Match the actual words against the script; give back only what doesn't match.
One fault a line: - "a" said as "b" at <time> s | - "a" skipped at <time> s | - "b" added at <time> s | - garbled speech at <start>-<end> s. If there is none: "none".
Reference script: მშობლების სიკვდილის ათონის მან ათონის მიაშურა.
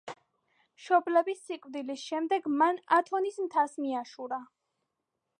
- "ათონის" said as "შემდეგ" at 2.1 s
- "მთას" added at 3.4 s